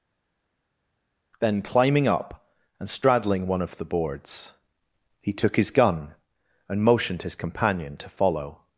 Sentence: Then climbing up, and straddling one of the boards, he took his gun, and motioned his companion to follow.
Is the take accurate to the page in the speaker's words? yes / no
yes